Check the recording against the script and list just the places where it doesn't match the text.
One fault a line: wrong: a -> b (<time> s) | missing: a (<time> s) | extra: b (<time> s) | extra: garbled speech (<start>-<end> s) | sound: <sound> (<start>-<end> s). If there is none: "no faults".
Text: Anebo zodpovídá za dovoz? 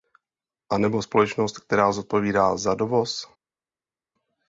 extra: společnost která (1.0 s)